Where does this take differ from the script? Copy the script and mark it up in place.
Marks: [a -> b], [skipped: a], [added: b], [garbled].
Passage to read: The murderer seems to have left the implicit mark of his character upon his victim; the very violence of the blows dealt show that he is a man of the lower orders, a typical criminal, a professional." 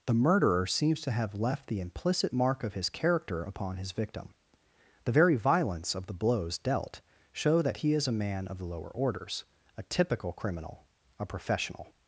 The murderer seems to have left the implicit mark of his character upon his victim; the very violence of the blows dealt show that he is a man of the lower orders, a typical criminal, a professional."